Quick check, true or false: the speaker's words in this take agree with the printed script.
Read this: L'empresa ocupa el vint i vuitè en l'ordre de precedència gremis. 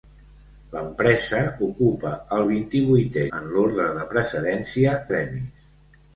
true